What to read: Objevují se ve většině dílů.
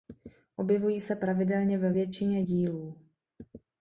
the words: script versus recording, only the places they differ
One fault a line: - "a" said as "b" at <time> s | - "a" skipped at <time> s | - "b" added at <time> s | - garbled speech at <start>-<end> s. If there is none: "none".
- "pravidelně" added at 1.1 s